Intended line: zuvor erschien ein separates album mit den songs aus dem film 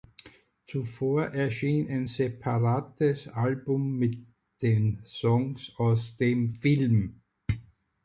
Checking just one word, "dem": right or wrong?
right